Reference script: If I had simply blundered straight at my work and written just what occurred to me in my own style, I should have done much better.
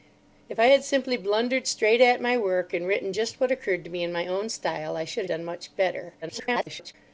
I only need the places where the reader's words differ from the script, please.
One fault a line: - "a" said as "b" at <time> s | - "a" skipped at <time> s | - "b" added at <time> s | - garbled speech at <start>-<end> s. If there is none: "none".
- "have" skipped at 5.2 s
- garbled speech at 6.2-6.9 s